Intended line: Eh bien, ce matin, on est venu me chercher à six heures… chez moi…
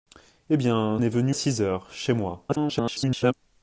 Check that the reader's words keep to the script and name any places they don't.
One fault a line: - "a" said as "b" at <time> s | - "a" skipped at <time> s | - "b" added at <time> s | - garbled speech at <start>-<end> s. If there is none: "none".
- "ce matin on" skipped at 1.0 s
- "me chercher" skipped at 1.3 s
- garbled speech at 2.5-3.3 s